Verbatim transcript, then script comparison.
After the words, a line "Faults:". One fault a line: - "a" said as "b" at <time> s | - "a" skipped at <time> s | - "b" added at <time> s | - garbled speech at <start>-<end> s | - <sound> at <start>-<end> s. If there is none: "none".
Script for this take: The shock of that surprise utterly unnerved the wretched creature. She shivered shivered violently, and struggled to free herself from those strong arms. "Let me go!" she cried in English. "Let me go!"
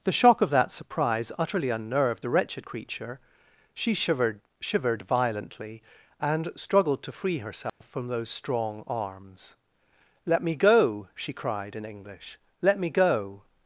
The shock of that surprise utterly unnerved the wretched creature. She shivered shivered violently, and struggled to free herself from those strong arms. "Let me go!" she cried in English. "Let me go!"
Faults:
- dropout at 7.7-7.8 s